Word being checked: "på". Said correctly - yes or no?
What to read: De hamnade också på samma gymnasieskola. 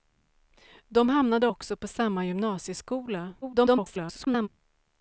yes